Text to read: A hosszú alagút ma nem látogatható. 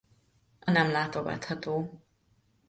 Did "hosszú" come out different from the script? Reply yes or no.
yes